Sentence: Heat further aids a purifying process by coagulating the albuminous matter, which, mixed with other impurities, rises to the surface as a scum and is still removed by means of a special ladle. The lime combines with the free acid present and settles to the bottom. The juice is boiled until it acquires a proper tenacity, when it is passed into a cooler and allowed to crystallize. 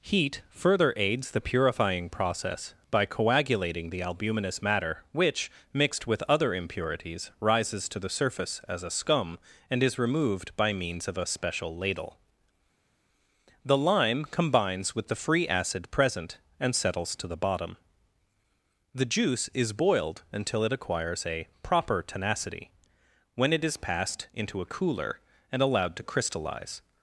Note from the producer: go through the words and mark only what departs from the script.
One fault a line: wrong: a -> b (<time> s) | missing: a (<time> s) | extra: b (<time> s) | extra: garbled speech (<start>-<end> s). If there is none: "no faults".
wrong: a -> the (1.3 s)
missing: still (10.0 s)